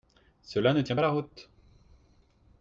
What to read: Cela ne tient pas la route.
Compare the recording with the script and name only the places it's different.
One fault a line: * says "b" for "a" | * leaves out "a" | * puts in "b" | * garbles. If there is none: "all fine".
all fine